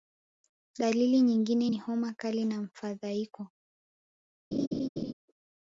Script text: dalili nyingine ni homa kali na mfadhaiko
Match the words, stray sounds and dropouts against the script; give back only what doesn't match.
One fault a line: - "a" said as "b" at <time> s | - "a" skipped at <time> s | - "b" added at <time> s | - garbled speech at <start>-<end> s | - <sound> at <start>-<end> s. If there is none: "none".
- laugh at 4.5-5.1 s